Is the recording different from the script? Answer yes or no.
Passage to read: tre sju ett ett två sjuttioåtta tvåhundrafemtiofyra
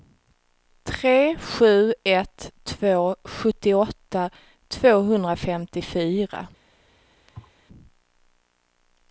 yes